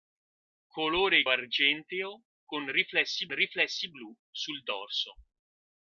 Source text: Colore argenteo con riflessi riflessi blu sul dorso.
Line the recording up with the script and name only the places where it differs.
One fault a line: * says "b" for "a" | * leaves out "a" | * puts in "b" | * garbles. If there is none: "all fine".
all fine